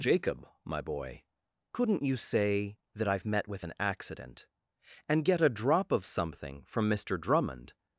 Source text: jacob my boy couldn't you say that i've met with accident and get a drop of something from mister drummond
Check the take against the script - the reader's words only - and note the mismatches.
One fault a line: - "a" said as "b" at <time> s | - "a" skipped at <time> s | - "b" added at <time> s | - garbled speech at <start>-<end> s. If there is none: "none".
- "an" added at 3.6 s